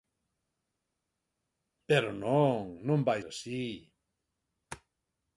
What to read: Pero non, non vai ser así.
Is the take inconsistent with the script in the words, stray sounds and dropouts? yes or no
yes